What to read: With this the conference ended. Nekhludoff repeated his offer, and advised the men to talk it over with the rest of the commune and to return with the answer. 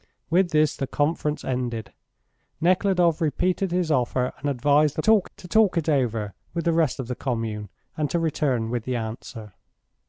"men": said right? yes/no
no